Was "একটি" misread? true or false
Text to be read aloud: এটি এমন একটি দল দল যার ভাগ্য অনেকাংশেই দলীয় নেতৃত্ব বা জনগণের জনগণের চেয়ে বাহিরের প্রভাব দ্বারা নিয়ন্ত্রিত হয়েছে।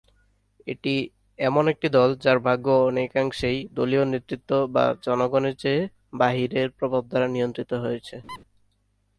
false